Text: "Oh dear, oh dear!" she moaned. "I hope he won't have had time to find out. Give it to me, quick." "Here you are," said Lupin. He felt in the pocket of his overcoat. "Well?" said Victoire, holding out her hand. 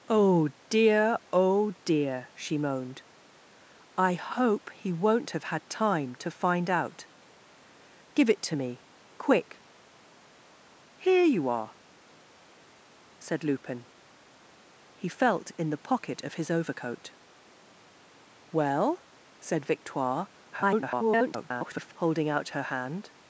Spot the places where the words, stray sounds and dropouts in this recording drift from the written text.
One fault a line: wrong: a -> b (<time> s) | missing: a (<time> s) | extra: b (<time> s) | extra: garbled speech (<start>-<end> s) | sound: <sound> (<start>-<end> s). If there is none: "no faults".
extra: garbled speech (20.5-21.9 s)